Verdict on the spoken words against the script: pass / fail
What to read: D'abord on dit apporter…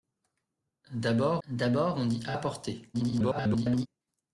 fail